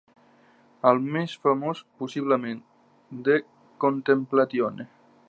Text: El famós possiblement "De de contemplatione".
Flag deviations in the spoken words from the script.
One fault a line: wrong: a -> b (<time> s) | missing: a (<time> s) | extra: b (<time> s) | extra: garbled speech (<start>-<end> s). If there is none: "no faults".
extra: més (1.2 s)
missing: de (3.4 s)